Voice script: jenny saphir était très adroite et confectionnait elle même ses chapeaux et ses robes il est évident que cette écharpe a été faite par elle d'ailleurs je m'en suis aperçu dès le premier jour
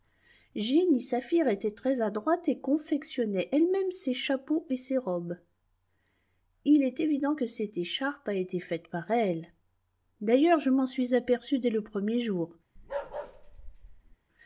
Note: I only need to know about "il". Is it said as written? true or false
true